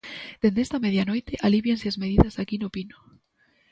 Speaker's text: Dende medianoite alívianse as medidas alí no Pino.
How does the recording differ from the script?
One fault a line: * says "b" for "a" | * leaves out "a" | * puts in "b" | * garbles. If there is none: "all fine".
* puts in "esta"
* says "aquí" for "alí"